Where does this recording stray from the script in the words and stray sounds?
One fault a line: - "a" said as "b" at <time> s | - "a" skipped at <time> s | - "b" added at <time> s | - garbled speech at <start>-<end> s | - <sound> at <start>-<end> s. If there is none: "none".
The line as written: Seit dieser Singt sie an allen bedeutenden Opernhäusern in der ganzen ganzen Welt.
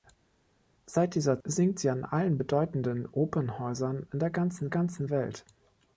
none